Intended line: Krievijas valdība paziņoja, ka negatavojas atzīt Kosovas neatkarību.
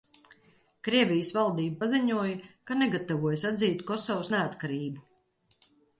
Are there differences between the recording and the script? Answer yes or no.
no